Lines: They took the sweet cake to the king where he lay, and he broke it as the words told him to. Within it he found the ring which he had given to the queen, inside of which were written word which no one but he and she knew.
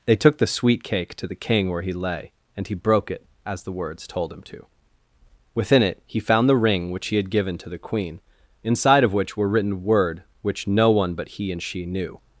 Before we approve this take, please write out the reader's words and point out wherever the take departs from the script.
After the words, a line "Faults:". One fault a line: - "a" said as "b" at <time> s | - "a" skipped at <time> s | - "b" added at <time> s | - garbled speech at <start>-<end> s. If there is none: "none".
They took the sweet cake to the king where he lay, and he broke it as the words told him to. Within it he found the ring which he had given to the queen, inside of which were written word which no one but he and she knew.
Faults:
none